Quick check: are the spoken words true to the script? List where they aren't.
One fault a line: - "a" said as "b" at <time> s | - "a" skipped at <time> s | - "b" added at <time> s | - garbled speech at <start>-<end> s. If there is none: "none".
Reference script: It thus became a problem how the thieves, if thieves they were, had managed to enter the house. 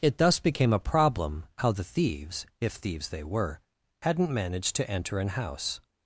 - "had" said as "hadn't" at 4.0 s
- "the" said as "an" at 5.2 s